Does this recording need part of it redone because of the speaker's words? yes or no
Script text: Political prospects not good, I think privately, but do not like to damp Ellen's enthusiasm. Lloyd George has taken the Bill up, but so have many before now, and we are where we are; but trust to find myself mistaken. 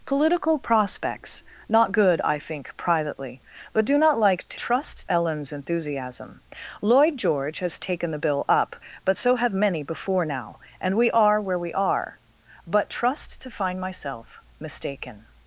yes